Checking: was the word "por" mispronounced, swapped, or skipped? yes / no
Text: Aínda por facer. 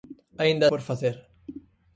no